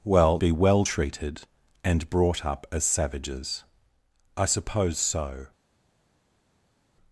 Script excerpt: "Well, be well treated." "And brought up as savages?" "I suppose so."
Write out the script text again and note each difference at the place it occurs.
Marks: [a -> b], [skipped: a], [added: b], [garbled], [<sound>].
"Well, be well treated." "And brought up as savages?" "I suppose so."